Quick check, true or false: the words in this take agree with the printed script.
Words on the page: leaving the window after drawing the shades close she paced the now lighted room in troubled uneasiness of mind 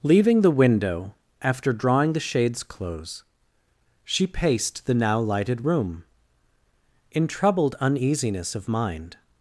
true